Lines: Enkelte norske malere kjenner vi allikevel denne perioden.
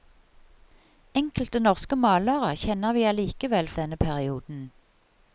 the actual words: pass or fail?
pass